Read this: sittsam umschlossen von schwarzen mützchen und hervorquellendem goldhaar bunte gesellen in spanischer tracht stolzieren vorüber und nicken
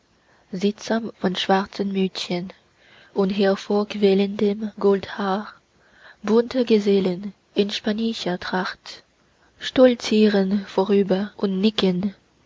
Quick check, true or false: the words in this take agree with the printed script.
false